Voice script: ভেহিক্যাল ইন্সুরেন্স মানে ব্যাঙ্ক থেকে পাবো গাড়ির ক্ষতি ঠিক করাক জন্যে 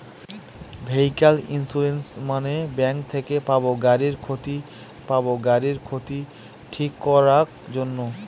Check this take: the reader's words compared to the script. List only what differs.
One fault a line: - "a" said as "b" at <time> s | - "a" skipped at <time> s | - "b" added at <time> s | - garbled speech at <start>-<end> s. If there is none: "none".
- "পাবো গাড়ির ক্ষতি" added at 5.1 s